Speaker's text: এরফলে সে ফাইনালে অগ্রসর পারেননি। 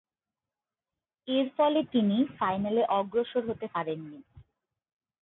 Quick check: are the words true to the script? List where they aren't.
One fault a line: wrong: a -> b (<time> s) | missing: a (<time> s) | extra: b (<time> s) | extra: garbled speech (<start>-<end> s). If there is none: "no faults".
wrong: সে -> তিনি (1.9 s)
extra: হতে (3.5 s)